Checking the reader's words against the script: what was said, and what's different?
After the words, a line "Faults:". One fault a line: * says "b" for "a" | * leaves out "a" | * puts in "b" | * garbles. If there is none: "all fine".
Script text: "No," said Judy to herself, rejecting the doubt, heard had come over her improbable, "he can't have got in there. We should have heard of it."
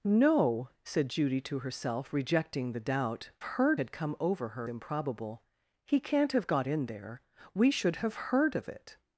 "No," said Judy to herself, rejecting the doubt, heard had come over her improbable, "he can't have got in there. We should have heard of it."
Faults:
all fine